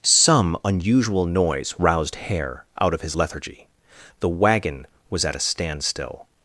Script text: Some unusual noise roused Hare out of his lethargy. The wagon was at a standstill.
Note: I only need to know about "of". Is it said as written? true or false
true